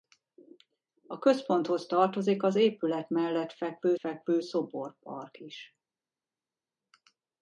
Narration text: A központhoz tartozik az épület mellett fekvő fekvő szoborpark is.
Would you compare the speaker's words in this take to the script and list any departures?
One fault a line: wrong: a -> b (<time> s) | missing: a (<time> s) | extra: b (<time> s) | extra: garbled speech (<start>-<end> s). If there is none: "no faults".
no faults